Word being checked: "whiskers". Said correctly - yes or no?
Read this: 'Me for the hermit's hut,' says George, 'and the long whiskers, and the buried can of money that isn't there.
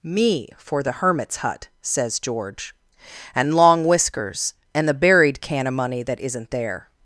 yes